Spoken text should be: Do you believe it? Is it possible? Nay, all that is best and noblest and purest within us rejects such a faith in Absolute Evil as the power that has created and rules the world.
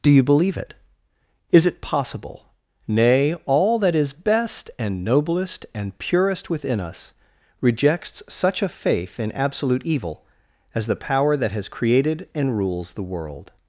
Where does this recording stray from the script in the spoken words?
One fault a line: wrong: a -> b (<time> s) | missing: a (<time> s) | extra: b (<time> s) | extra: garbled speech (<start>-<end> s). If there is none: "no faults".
no faults